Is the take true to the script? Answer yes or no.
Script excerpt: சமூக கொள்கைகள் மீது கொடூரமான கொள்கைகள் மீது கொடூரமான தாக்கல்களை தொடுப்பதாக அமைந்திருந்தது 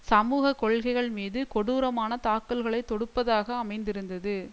no